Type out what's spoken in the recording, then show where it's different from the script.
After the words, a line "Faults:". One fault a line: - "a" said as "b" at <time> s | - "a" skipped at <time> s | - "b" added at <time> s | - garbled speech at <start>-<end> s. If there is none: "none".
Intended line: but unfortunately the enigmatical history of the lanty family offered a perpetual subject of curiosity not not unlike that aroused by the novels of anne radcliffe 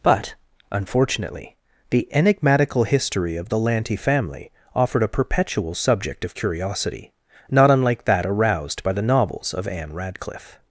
but unfortunately the enigmatical history of the lanty family offered a perpetual subject of curiosity not unlike that aroused by the novels of anne radcliffe
Faults:
- "not" skipped at 7.7 s